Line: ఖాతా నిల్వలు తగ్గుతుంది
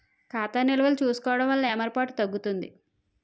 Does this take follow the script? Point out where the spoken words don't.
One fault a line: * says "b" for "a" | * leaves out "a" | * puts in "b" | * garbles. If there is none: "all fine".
* puts in "చూసుకోవడం వలన ఏమరపాటు"